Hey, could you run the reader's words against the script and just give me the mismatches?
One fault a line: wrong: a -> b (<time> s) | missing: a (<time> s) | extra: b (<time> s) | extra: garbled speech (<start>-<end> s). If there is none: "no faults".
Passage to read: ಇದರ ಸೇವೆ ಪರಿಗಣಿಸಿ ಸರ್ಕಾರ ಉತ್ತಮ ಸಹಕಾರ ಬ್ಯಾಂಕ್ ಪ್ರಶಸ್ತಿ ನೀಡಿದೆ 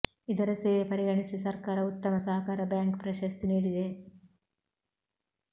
no faults